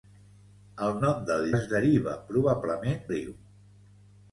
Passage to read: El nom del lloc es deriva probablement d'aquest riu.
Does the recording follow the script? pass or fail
fail